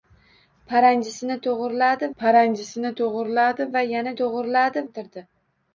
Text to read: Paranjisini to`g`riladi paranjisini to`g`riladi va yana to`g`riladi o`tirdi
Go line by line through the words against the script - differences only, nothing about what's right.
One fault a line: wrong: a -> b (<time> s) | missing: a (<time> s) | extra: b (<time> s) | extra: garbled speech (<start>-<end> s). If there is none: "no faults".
no faults